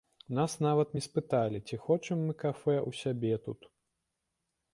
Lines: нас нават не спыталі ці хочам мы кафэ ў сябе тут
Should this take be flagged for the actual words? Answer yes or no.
no